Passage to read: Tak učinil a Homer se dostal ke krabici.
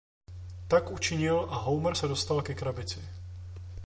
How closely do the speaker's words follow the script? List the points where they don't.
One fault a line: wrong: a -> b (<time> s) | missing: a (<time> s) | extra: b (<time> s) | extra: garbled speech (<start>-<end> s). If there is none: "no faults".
no faults